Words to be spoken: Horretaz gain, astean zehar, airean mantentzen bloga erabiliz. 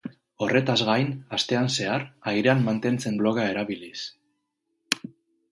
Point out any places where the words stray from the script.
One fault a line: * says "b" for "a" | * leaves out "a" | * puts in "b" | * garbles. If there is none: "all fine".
all fine